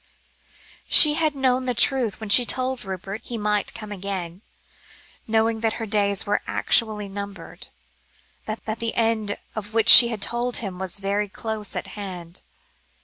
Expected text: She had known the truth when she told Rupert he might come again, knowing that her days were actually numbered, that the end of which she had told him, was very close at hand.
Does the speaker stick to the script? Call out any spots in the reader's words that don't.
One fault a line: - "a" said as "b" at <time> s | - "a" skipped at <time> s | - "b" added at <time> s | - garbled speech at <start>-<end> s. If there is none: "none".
- "that" added at 8.7 s